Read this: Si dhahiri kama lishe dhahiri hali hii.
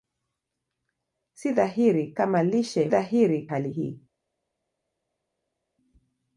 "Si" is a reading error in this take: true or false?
false